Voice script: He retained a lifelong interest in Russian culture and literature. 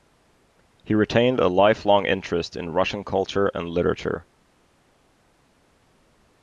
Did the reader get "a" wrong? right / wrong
right